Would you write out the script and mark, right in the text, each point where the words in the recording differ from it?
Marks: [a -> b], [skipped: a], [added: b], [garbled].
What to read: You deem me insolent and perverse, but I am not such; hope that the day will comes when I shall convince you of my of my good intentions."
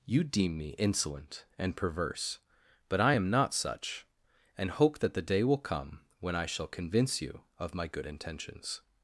You deem me insolent and perverse, but I am not such; [added: and] hope that the day will [comes -> come] when I shall convince you of my [skipped: of my] good intentions."